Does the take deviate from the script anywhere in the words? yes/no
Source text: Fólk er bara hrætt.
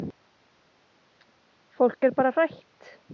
no